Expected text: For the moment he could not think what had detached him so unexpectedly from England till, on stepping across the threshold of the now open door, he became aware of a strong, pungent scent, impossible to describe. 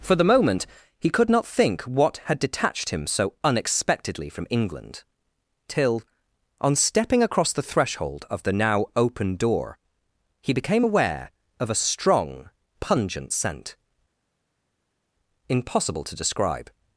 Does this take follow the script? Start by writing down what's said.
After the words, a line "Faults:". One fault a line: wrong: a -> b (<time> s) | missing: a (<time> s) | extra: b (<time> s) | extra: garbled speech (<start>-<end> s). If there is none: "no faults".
For the moment he could not think what had detached him so unexpectedly from England till, on stepping across the threshold of the now open door, he became aware of a strong, pungent scent, impossible to describe.
Faults:
no faults